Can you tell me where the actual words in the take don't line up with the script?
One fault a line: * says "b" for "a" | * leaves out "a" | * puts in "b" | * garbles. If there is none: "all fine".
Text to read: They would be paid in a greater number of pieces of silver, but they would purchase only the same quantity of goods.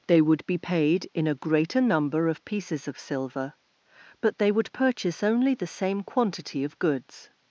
all fine